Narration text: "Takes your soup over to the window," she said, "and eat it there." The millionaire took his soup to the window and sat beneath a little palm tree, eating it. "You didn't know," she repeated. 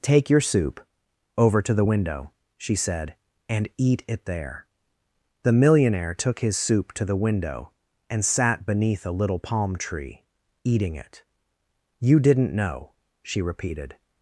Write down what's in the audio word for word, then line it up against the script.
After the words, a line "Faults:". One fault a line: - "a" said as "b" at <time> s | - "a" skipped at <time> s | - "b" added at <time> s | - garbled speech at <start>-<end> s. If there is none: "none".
"Take your soup over to the window," she said, "and eat it there." The millionaire took his soup to the window and sat beneath a little palm tree, eating it. "You didn't know," she repeated.
Faults:
- "Takes" said as "Take" at 0.0 s